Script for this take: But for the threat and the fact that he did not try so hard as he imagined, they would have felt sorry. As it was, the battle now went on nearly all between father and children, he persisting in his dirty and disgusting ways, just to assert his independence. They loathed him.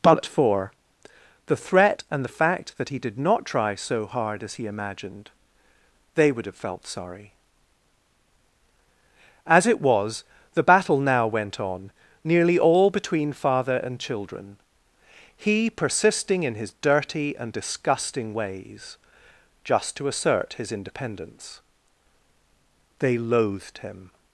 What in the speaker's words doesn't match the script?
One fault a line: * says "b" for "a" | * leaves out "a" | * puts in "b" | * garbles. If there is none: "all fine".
all fine